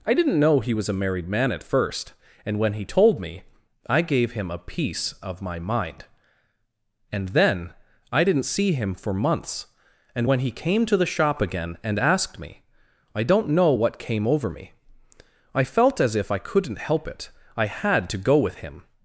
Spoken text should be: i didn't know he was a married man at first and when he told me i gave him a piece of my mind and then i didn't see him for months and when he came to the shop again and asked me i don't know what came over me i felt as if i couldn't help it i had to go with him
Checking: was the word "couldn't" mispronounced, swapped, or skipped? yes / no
no